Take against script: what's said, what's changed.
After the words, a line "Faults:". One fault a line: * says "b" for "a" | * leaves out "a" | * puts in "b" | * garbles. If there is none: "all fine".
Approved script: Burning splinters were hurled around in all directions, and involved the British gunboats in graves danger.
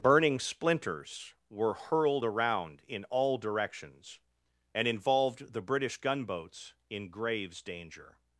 Burning splinters were hurled around in all directions, and involved the British gunboats in graves danger.
Faults:
all fine